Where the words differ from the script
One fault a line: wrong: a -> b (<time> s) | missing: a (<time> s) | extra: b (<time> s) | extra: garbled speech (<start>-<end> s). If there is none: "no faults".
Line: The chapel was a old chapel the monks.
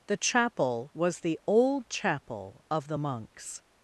wrong: a -> the (1.2 s)
extra: of (2.7 s)